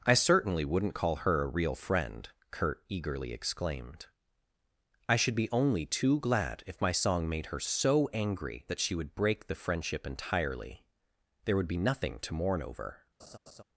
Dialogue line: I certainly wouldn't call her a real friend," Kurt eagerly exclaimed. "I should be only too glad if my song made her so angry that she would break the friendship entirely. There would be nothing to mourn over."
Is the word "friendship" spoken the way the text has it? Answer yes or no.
yes